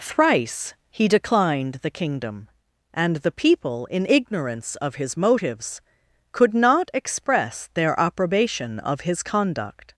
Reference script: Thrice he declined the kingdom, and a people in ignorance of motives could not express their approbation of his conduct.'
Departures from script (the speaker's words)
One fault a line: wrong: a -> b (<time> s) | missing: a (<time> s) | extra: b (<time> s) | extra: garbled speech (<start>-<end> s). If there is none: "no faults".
wrong: a -> the (3.2 s)
extra: his (4.9 s)